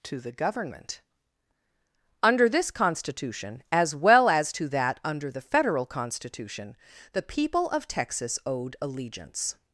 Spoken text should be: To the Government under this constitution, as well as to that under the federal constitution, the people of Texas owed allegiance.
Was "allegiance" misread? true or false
false